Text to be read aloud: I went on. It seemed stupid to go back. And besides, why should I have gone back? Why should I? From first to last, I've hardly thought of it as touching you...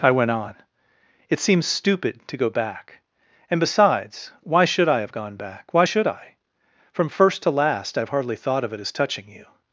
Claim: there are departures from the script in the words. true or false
true